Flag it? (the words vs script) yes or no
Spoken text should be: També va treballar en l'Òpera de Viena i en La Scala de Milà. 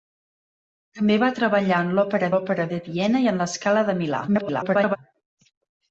yes